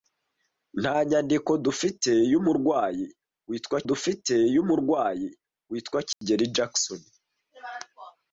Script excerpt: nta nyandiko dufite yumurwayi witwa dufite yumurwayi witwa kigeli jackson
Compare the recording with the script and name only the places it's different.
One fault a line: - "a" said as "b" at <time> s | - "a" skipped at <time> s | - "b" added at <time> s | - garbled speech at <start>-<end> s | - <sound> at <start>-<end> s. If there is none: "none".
- dropout at 6.1-6.2 s